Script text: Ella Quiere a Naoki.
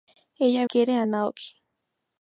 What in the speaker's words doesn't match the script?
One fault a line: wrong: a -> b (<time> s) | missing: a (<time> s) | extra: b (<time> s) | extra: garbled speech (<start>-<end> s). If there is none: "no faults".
no faults